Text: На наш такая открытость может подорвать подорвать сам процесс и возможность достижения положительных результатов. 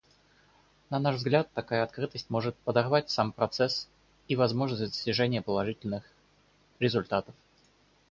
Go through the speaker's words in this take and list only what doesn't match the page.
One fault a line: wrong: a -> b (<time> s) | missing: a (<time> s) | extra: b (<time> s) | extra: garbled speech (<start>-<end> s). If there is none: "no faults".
extra: взгляд (1.2 s)
missing: подорвать (3.1 s)